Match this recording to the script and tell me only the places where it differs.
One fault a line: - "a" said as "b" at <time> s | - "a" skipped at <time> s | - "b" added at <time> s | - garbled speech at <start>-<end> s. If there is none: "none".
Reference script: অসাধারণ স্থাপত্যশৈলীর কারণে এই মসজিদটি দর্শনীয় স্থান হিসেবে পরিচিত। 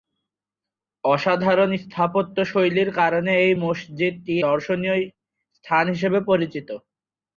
none